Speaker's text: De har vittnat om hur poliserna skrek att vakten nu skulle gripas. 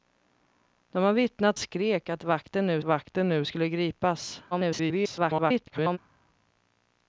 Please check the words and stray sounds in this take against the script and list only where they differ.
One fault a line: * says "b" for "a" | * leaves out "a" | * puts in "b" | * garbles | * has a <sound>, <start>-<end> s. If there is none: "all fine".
* says "skrek att vakten nu" for "om hur poliserna skrek att"
* garbles